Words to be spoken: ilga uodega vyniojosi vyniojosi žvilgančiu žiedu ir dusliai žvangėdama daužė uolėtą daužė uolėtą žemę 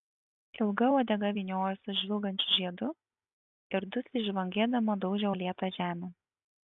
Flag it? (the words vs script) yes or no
yes